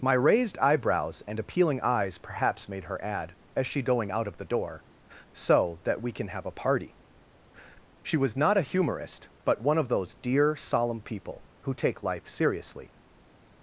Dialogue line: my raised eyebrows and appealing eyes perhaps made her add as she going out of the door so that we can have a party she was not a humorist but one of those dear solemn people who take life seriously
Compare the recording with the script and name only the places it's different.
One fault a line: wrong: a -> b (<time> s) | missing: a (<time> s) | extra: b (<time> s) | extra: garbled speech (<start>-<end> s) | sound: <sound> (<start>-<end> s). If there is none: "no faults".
no faults